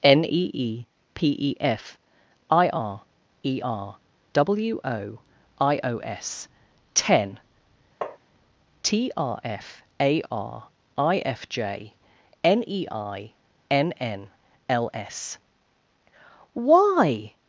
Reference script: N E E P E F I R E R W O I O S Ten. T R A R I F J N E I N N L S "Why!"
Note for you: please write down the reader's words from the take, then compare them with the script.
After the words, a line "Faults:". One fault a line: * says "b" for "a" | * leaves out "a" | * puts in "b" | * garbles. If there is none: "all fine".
N E E P E F I R E R W O I O S Ten. T R F A R I F J N E I N N L S "Why!"
Faults:
* puts in "F"